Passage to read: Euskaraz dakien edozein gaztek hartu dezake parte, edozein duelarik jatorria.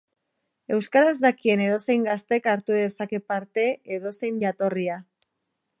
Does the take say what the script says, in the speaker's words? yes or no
no